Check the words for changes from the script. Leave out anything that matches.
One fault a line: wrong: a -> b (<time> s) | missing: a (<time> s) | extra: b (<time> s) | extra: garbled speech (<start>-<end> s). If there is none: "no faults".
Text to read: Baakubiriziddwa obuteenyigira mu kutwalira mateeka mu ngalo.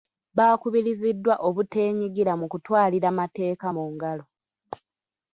no faults